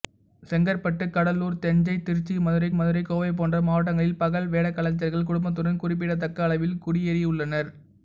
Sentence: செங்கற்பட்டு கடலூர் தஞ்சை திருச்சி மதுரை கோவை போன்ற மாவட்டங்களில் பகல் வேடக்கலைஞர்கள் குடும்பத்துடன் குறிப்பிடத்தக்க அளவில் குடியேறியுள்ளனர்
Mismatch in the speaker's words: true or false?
true